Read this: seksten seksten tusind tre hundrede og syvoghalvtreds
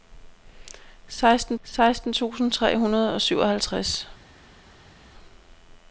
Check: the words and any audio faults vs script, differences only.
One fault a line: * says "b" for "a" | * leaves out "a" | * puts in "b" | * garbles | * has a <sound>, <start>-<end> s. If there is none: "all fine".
all fine